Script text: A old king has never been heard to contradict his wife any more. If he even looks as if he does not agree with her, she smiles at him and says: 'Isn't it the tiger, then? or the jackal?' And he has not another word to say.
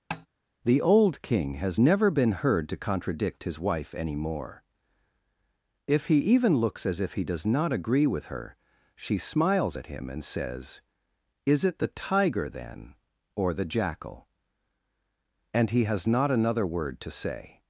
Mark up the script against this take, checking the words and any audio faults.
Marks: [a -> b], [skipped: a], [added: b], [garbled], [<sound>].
[tap] [A -> The] old king has never been heard to contradict his wife any more. If he even looks as if he does not agree with her, she smiles at him and says: ['Isn't -> Is] it the tiger, then? or the jackal?' And he has not another word to say.